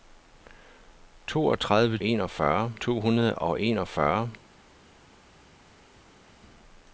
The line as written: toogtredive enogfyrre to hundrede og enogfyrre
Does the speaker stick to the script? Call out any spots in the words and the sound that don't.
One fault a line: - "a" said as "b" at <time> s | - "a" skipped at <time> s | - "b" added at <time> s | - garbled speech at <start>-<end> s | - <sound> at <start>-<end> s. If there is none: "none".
none